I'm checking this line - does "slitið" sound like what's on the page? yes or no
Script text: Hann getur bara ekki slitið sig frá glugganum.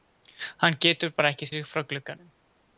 no